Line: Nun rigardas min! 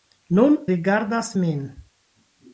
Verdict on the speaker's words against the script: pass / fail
pass